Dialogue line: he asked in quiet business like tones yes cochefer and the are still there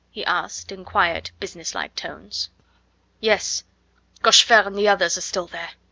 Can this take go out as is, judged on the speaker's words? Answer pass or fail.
fail